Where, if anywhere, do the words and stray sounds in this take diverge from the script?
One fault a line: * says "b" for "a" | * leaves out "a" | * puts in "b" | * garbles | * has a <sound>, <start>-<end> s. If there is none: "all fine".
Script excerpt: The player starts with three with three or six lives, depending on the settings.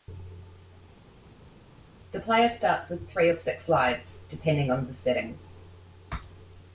* leaves out "with three"